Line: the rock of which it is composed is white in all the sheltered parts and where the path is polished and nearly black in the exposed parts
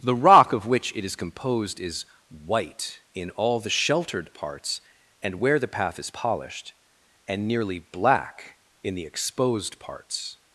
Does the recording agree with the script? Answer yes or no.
yes